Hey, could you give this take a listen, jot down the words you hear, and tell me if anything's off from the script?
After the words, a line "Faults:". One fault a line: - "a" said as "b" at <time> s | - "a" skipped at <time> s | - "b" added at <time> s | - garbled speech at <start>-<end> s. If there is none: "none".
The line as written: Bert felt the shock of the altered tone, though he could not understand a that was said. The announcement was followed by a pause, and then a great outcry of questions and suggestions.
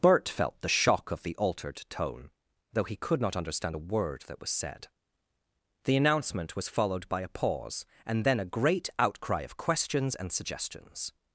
Bert felt the shock of the altered tone, though he could not understand a word that was said. The announcement was followed by a pause, and then a great outcry of questions and suggestions.
Faults:
- "word" added at 3.9 s